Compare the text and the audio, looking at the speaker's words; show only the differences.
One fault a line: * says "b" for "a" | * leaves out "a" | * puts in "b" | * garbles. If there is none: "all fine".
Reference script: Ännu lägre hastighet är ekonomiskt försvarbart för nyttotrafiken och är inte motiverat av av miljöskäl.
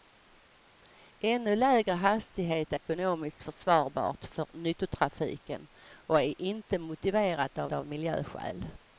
all fine